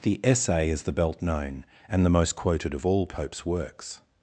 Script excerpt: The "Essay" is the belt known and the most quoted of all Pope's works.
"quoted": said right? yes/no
yes